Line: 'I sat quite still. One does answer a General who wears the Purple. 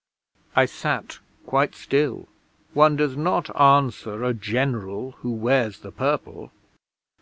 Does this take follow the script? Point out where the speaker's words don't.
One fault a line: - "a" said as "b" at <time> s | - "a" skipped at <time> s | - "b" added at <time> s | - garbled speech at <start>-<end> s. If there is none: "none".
- "not" added at 3.1 s